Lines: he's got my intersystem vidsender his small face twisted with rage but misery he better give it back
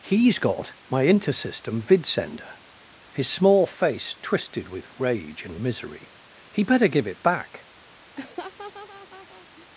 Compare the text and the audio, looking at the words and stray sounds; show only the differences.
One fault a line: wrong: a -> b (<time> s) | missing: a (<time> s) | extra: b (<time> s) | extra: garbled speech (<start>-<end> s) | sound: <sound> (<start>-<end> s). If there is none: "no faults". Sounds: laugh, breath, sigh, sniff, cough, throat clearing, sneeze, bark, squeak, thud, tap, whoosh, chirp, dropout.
wrong: but -> and (5.5 s)
sound: laugh (8.2-9.7 s)